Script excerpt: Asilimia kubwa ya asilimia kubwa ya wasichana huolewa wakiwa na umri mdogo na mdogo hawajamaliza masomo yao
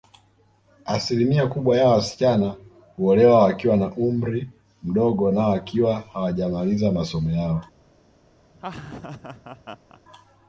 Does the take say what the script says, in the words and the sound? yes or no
no